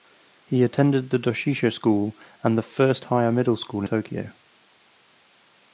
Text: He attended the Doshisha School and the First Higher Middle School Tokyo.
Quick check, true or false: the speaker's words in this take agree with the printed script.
true